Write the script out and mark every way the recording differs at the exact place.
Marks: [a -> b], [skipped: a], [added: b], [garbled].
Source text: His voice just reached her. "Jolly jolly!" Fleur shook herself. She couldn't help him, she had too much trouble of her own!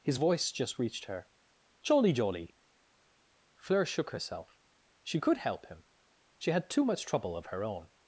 His voice just reached her. "Jolly jolly!" Fleur shook herself. She [couldn't -> could] help him, she had too much trouble of her own!